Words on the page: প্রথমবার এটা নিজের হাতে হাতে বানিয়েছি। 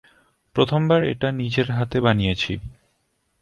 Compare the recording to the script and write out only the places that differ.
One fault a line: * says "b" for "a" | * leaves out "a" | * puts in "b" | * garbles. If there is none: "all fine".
* leaves out "হাতে"